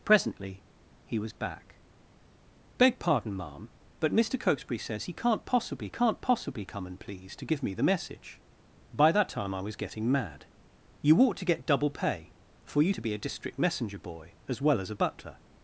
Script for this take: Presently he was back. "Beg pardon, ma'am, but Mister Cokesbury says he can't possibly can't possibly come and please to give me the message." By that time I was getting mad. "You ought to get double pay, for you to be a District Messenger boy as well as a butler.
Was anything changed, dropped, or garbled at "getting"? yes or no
no